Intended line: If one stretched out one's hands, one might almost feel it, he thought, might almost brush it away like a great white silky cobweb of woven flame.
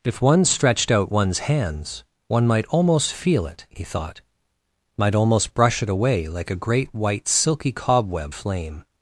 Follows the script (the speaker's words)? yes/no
no